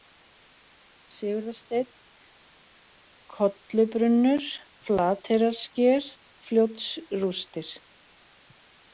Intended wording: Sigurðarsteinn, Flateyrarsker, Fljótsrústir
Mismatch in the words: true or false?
true